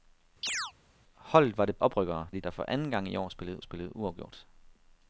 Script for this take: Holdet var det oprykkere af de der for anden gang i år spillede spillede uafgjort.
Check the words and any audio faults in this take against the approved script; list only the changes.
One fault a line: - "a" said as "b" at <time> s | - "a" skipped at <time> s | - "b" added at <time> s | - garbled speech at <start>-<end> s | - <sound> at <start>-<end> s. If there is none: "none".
- chirp at 0.4-0.7 s